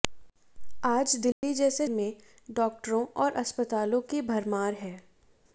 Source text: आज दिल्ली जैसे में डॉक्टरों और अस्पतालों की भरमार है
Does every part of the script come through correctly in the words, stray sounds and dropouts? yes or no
no